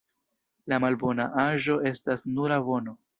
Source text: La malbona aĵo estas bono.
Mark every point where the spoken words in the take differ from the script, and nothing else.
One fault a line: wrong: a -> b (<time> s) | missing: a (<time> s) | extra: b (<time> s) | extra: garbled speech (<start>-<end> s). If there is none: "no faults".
extra: nura (2.4 s)